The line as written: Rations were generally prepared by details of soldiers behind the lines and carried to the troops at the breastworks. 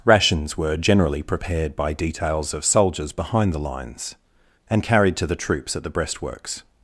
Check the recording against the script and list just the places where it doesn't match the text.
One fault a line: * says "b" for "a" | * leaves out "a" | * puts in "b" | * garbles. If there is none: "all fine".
all fine